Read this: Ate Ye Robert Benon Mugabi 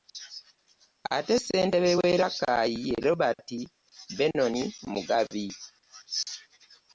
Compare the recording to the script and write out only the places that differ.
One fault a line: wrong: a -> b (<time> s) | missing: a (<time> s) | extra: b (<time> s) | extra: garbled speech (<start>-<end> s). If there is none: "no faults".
extra: Ssentebe w'e Rakai (1.4 s)